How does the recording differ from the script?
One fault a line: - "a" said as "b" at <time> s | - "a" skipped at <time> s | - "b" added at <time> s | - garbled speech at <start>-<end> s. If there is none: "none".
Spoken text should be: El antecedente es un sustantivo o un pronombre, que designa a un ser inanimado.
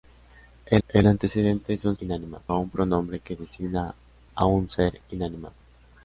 - "el" added at 0.9 s
- "sustantivo" said as "inanimado" at 2.0 s